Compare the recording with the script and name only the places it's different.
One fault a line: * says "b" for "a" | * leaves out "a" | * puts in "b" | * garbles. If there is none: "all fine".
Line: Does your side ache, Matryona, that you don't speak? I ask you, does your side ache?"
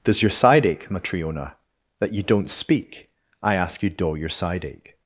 * says "doe" for "does"